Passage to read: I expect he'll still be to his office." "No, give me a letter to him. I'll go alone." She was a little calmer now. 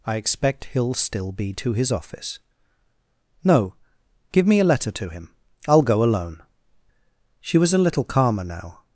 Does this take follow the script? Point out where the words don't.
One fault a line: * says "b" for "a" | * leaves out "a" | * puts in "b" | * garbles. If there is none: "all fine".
all fine